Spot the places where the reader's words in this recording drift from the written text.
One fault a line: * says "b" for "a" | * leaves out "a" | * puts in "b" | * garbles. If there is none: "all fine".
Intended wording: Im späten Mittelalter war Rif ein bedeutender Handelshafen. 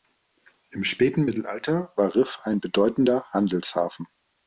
all fine